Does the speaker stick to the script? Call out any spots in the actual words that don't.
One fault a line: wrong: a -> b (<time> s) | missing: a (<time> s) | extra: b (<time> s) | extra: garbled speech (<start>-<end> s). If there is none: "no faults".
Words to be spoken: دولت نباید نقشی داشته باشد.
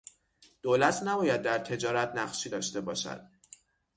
extra: در تجارت (1.4 s)